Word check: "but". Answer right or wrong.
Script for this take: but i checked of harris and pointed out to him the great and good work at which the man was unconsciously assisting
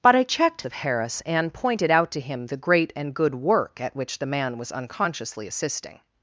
right